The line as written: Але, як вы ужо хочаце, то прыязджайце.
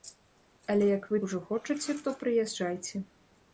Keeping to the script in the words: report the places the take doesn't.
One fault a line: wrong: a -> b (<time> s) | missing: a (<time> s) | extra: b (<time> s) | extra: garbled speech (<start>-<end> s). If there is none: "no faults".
no faults